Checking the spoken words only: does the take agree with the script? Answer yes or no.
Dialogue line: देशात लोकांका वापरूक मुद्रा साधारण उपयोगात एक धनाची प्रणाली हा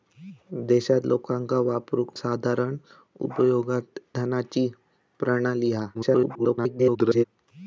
no